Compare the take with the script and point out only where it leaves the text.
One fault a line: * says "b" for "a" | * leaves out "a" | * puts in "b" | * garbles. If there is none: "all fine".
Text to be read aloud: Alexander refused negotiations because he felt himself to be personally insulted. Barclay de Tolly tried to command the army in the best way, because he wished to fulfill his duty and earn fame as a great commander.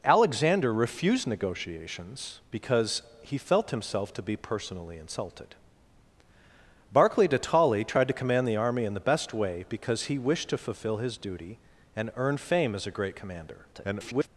* garbles